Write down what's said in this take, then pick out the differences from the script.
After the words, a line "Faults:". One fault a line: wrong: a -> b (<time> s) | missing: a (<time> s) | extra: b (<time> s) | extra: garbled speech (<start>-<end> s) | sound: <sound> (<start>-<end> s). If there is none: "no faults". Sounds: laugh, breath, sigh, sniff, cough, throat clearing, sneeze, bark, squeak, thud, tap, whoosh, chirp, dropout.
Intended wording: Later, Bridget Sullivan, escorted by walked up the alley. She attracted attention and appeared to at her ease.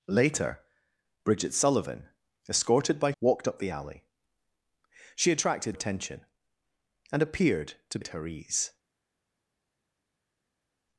Later, Bridget Sullivan, escorted by walked up the alley. She attracted attention and appeared to at her ease.
Faults:
no faults